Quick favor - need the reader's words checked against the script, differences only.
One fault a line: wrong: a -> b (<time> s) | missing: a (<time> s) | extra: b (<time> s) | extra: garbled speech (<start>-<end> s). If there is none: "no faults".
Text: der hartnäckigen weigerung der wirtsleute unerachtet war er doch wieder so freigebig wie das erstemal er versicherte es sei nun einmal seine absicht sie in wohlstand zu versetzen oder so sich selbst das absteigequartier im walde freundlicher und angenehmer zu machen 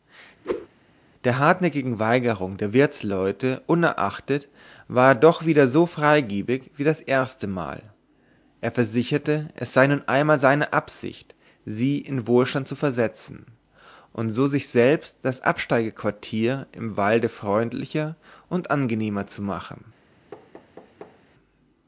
wrong: oder -> und (14.1 s)